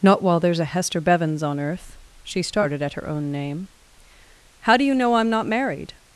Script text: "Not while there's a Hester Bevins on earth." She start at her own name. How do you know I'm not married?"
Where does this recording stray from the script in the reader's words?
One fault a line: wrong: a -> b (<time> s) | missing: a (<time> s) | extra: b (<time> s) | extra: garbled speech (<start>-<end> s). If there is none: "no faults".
wrong: start -> started (2.4 s)